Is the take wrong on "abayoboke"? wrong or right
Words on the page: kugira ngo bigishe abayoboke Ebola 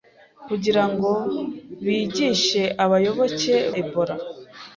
right